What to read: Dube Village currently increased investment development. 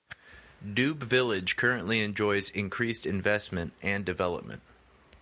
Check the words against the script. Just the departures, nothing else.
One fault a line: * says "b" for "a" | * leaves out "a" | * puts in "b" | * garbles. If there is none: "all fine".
* puts in "enjoys"
* puts in "and"